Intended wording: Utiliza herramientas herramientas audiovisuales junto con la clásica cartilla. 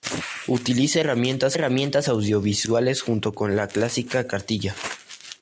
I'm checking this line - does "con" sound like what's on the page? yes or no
yes